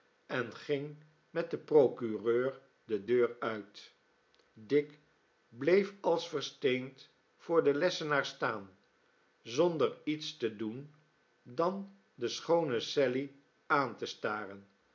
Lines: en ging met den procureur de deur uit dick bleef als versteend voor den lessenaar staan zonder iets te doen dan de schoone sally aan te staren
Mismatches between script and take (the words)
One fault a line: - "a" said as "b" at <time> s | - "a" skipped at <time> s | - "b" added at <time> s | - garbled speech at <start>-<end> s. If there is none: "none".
none